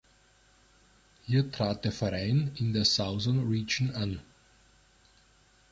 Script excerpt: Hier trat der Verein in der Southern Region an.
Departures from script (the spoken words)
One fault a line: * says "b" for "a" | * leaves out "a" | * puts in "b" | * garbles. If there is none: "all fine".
all fine